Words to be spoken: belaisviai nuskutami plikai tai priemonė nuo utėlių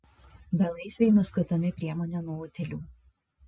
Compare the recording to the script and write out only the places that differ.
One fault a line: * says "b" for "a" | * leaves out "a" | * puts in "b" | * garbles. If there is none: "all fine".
* leaves out "plikai tai"